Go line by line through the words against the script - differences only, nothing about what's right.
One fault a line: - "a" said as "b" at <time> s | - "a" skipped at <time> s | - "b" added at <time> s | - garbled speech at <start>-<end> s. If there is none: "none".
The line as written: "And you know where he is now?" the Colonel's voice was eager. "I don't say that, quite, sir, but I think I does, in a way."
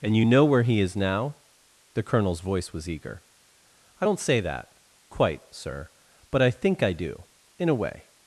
- "does" said as "do" at 6.9 s